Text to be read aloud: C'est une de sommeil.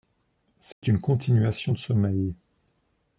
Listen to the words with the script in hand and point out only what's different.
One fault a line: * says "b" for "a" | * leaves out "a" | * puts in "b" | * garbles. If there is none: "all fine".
* puts in "continuation"